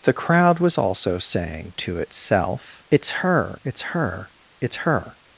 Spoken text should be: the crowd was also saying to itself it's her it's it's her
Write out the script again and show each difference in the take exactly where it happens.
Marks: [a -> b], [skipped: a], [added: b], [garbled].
the crowd was also saying to itself it's her it's [added: her] it's her